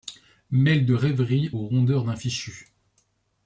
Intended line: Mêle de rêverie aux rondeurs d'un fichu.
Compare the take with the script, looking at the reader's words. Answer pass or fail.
pass